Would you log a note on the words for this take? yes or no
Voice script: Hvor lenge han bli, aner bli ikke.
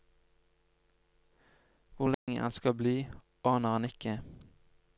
yes